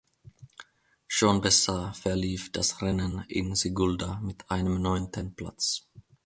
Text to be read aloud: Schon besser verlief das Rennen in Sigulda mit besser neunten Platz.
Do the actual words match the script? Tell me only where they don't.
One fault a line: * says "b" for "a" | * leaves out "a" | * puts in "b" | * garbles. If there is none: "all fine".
* says "einem" for "besser"